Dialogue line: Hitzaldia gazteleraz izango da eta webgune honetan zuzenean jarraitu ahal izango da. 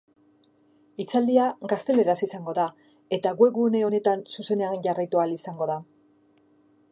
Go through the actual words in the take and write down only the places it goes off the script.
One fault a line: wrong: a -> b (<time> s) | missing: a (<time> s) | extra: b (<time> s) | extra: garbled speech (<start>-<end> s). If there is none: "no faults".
no faults